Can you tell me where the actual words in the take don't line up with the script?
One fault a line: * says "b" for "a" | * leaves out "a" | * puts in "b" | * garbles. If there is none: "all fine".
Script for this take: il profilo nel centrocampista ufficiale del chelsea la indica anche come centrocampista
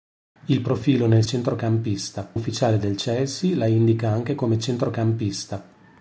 all fine